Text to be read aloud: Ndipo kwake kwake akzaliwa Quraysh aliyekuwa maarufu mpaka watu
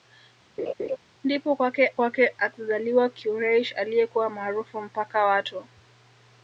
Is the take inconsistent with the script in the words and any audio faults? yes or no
yes